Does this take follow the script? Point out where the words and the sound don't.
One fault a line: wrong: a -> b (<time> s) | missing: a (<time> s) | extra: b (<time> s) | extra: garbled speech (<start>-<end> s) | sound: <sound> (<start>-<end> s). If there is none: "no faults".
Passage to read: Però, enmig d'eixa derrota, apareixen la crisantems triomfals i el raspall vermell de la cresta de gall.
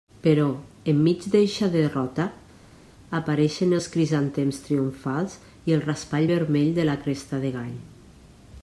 wrong: la -> els (3.8 s)